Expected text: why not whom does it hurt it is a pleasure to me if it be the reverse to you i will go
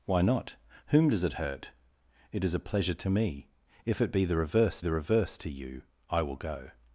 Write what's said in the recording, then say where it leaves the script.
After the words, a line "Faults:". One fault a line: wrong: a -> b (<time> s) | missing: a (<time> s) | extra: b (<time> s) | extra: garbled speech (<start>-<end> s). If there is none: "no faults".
why not whom does it hurt it is a pleasure to me if it be the reverse the reverse to you i will go
Faults:
extra: the reverse (4.8 s)